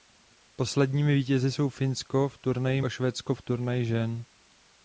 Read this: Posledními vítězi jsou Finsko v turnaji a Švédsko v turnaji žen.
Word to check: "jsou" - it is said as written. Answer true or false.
true